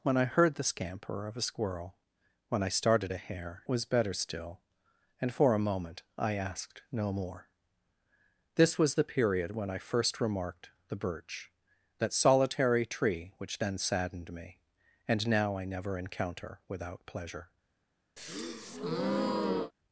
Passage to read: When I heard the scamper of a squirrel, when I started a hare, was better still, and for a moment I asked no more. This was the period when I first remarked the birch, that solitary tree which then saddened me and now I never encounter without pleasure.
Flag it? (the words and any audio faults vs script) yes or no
yes